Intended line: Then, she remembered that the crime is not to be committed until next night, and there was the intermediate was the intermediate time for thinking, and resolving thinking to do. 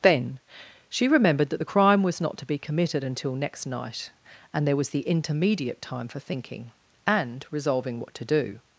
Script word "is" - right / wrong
wrong